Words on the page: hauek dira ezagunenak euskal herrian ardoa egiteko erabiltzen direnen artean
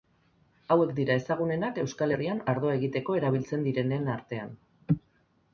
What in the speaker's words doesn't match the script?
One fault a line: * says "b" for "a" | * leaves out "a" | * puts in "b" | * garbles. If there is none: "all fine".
all fine